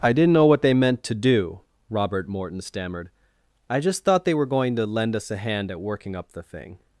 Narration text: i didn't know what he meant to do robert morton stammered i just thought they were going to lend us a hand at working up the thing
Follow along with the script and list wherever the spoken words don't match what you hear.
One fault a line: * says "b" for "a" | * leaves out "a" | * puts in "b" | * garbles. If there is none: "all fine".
* says "they" for "he"